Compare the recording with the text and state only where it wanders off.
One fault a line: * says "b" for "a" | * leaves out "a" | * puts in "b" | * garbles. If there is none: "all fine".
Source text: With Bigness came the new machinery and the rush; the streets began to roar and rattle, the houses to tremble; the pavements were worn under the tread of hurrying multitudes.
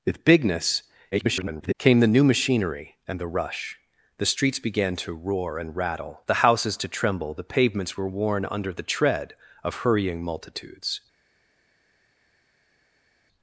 * garbles